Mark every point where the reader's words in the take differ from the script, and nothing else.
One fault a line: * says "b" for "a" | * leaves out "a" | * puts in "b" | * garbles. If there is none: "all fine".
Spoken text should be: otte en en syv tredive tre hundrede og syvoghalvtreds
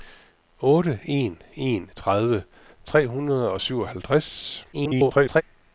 * leaves out "syv"
* garbles